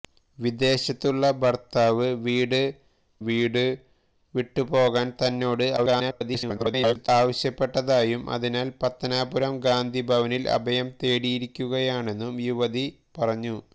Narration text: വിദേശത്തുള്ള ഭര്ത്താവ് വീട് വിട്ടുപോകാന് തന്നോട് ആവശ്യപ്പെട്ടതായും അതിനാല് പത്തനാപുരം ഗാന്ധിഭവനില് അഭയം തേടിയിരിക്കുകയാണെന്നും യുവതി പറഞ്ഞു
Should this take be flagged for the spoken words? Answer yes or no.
yes